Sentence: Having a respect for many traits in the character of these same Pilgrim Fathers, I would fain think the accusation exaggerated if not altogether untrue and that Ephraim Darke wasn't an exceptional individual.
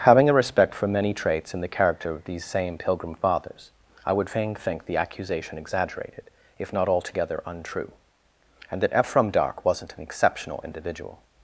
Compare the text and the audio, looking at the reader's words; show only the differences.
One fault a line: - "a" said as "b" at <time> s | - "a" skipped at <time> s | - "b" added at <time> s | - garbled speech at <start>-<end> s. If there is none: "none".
none